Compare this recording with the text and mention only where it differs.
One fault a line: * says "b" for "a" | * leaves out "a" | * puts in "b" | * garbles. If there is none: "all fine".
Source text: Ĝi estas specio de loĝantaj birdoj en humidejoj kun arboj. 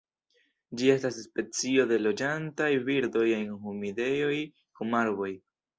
all fine